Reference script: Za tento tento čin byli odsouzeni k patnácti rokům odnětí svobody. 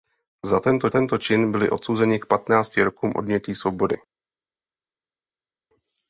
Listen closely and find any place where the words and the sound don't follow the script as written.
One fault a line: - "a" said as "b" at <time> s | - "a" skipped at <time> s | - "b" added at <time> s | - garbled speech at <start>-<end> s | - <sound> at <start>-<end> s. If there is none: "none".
none